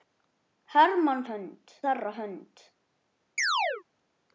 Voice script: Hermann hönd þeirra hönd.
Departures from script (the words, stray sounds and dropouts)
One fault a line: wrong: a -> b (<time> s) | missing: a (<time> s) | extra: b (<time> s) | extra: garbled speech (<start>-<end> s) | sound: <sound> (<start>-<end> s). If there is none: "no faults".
sound: chirp (3.4-3.8 s)